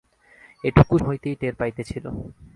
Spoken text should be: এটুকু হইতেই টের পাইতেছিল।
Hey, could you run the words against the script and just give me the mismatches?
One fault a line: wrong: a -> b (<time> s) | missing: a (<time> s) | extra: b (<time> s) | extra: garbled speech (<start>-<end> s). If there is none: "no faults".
no faults